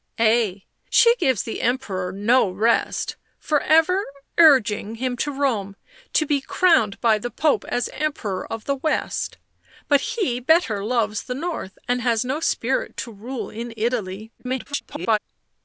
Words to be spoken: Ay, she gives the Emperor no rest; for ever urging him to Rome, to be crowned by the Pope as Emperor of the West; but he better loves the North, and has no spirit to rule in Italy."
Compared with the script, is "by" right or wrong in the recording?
right